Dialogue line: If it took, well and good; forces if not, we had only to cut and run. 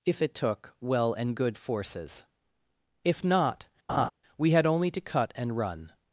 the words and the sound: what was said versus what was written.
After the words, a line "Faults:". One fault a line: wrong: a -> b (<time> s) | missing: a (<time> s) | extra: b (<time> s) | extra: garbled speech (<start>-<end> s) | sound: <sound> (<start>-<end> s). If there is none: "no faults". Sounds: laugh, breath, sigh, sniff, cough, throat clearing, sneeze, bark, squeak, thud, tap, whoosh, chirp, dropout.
If it took, well and good; forces if not, we had only to cut and run.
Faults:
sound: laugh (3.9-4.1 s)